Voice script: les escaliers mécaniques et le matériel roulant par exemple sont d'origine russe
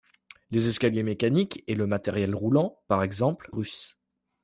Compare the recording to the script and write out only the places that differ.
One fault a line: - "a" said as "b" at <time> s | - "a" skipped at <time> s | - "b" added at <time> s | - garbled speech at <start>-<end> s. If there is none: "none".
- "sont d'origine" skipped at 3.5 s